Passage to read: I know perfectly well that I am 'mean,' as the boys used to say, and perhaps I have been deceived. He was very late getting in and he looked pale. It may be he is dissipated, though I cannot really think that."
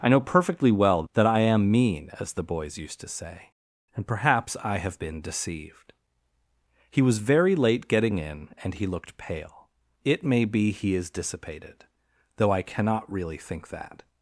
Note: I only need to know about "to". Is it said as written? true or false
true